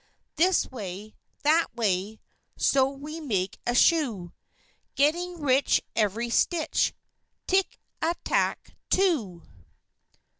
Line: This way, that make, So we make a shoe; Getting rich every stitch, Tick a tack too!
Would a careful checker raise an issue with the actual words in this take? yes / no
yes